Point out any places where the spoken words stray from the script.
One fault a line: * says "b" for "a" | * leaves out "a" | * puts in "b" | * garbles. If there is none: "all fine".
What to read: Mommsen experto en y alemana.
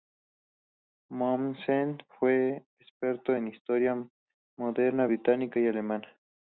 * puts in "fue"
* puts in "historia moderna británica"